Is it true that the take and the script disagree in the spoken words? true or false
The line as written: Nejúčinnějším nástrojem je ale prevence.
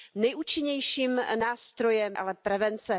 true